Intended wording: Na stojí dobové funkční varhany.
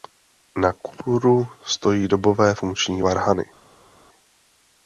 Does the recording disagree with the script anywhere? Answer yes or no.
yes